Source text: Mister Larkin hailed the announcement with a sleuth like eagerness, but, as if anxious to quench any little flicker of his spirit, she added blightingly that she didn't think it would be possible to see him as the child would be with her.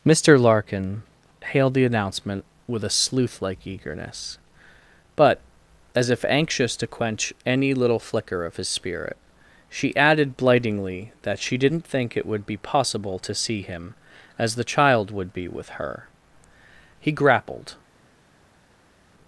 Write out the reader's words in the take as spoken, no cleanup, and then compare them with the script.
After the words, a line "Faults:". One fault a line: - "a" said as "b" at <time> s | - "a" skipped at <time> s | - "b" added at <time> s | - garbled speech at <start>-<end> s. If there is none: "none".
Mister Larkin hailed the announcement with a sleuth like eagerness, but, as if anxious to quench any little flicker of his spirit, she added blightingly that she didn't think it would be possible to see him as the child would be with her. He grappled
Faults:
- "He grappled" added at 17.0 s